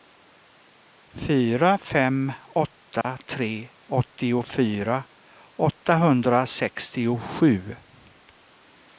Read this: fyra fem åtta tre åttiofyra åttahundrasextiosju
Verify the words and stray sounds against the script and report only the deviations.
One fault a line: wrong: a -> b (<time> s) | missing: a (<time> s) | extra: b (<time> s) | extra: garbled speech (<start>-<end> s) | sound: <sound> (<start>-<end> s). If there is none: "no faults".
sound: dropout (3.0-3.0 s)